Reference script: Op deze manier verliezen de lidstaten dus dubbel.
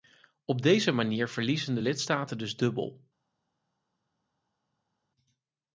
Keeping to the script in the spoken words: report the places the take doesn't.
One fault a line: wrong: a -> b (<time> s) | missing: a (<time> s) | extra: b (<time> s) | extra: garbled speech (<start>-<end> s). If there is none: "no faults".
no faults